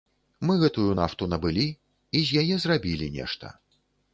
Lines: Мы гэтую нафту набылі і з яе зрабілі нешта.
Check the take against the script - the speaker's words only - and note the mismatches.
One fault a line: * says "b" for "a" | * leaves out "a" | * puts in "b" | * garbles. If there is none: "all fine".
all fine